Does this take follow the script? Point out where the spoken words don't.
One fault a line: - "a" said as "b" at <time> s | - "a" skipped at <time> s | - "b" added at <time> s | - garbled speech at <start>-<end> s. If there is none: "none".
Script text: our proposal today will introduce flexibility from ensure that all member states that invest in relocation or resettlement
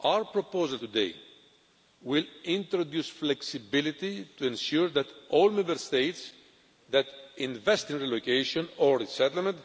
- "from" said as "to" at 4.4 s